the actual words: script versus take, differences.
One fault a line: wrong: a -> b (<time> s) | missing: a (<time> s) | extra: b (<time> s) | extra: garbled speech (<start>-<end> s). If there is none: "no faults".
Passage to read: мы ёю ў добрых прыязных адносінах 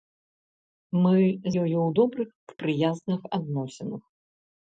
no faults